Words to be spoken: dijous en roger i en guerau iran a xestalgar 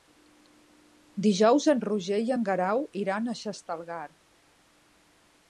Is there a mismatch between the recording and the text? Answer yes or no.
no